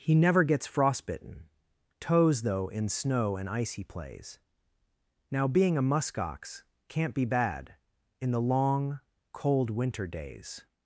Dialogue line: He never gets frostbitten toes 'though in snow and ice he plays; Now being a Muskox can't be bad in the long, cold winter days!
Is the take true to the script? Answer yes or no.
yes